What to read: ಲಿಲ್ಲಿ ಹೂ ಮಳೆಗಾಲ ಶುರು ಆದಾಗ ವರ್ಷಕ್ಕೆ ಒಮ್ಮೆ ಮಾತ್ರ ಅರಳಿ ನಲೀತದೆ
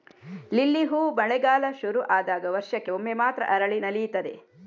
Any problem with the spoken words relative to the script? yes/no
no